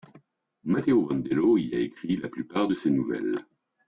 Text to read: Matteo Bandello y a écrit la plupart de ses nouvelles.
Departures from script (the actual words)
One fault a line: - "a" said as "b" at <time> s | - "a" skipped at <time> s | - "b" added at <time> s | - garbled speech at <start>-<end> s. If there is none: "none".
none